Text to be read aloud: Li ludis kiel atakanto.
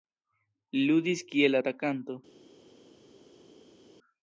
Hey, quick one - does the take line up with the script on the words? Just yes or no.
yes